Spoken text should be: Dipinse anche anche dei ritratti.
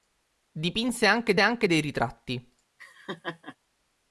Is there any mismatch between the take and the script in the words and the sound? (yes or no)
yes